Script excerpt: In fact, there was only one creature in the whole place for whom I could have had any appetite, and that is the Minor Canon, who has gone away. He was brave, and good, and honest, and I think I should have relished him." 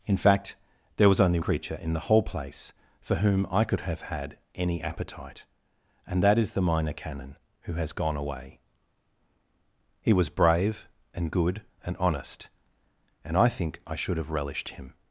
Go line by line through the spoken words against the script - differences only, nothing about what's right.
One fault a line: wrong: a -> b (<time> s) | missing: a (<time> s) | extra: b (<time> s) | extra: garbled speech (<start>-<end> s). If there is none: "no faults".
missing: one (1.4 s)